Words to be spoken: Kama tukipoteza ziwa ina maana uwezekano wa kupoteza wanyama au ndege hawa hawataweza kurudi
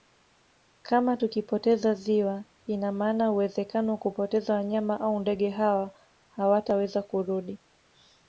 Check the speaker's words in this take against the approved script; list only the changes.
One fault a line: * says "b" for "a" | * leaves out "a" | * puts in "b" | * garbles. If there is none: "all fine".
all fine